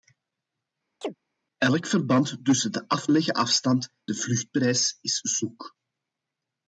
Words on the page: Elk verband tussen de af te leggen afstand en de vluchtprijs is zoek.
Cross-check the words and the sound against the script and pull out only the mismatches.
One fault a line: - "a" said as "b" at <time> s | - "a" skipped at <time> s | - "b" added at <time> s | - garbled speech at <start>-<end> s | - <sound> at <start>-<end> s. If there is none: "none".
- chirp at 1.0-1.2 s
- "te" skipped at 3.1 s
- "en" skipped at 3.9 s